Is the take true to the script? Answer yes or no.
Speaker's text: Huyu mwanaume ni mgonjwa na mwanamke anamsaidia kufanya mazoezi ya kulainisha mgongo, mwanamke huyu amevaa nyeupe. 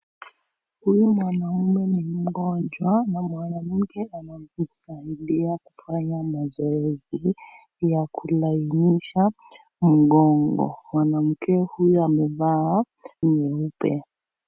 yes